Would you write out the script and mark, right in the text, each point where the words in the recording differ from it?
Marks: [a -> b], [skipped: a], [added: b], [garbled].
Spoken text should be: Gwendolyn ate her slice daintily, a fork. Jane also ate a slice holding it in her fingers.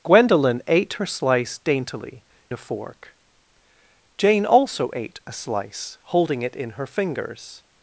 Gwendolyn ate her slice daintily, a fork. Jane also ate a slice holding it in her fingers.